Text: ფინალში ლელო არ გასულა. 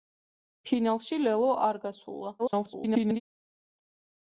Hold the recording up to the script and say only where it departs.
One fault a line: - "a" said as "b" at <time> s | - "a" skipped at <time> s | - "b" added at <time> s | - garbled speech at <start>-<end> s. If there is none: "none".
- garbled speech at 2.4-3.2 s